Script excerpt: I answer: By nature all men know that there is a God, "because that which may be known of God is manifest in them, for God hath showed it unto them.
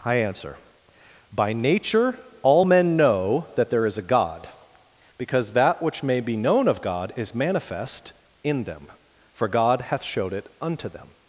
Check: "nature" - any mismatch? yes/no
no